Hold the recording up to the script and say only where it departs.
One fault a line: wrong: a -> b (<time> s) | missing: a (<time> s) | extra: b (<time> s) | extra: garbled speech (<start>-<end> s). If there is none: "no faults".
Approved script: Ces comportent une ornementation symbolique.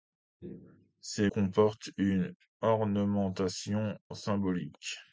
no faults